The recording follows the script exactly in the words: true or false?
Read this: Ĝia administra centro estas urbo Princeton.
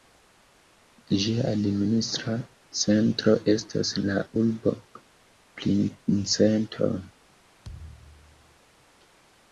false